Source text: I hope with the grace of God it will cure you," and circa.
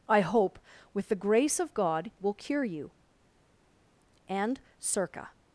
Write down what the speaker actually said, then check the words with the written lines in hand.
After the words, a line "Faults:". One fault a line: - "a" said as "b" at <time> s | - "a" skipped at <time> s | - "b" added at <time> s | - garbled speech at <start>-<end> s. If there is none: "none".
I hope with the grace of God will cure you," and circa.
Faults:
- "it" skipped at 2.1 s